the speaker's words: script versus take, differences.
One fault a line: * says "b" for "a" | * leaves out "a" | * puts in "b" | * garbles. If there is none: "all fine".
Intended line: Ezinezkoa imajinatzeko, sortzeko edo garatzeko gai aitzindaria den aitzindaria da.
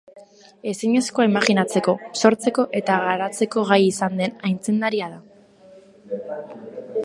* says "eta" for "edo"
* says "izan" for "aitzindaria"